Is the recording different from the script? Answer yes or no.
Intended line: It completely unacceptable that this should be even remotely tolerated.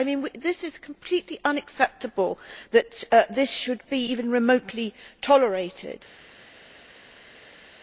yes